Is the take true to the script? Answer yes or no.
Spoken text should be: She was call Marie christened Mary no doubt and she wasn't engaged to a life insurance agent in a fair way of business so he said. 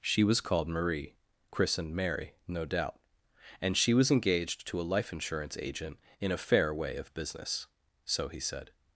no